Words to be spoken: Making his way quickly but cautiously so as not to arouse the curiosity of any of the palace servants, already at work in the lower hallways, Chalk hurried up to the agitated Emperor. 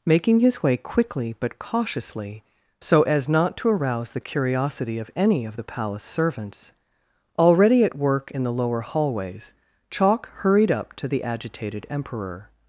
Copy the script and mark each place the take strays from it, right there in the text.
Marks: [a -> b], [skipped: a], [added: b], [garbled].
Making his way quickly but cautiously so as not to arouse the curiosity of any of the palace servants, already at work in the lower hallways, Chalk hurried up to the agitated Emperor.